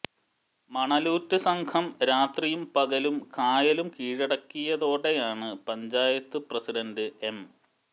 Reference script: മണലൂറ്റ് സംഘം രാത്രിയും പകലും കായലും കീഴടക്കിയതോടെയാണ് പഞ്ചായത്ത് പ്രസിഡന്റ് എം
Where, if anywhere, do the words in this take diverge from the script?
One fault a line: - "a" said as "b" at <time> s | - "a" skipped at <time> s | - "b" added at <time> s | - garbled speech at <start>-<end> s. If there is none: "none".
none